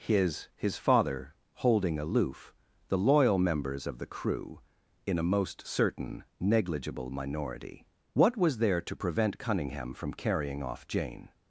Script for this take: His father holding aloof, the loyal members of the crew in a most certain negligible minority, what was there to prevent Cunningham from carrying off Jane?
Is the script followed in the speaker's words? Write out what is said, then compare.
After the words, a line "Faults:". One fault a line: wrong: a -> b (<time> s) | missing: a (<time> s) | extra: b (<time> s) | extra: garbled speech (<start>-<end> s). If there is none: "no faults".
His his father holding aloof, the loyal members of the crew in a most certain negligible minority, what was there to prevent Cunningham from carrying off Jane?
Faults:
extra: his (0.6 s)